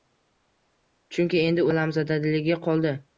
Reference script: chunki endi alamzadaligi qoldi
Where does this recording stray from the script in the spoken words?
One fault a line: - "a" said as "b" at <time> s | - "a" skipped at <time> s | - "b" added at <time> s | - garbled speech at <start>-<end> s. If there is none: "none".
none